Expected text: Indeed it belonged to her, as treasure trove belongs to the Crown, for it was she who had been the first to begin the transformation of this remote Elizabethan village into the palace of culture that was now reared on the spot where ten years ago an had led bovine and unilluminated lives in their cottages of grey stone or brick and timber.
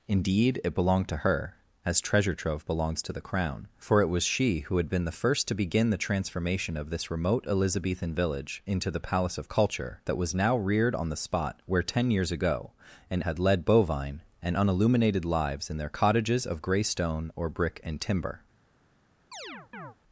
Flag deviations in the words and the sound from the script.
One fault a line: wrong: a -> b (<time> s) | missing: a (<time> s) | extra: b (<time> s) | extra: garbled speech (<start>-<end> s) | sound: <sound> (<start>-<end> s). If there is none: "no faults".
sound: chirp (19.3-20.0 s)